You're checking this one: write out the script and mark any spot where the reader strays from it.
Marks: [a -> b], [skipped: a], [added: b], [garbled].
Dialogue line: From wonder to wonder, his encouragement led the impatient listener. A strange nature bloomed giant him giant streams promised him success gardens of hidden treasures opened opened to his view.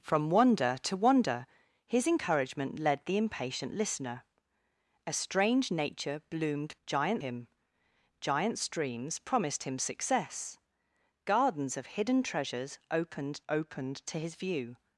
From wonder to wonder, his encouragement led the impatient listener. A strange nature bloomed giant him giant streams promised him success gardens of hidden treasures opened opened to his view.